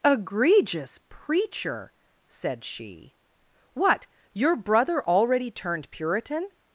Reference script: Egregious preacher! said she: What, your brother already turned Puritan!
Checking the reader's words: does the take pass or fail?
pass